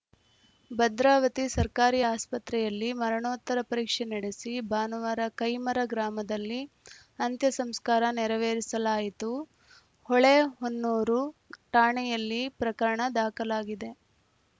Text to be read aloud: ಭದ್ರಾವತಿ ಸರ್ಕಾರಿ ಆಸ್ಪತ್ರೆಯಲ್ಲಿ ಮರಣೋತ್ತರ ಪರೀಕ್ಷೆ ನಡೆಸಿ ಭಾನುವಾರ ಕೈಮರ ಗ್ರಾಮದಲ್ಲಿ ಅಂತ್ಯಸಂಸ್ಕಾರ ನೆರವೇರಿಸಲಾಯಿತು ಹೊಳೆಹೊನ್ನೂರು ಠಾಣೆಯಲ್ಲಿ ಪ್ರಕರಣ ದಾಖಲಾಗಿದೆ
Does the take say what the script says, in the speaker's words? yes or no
yes